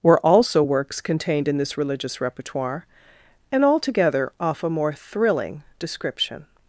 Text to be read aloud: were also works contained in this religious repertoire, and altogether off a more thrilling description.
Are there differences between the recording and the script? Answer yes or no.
no